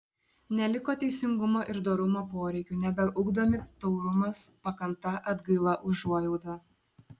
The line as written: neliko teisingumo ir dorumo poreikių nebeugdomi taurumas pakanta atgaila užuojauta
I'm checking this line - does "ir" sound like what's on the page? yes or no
yes